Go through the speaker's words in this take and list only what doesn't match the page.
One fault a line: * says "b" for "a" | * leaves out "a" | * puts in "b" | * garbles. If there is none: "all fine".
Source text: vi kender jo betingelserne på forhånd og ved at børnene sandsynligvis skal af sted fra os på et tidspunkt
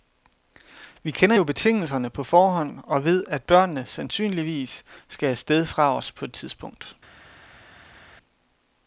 all fine